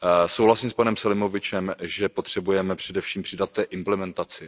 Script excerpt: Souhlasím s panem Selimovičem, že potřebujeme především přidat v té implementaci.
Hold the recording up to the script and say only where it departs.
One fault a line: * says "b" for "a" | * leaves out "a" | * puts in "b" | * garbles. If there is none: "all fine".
all fine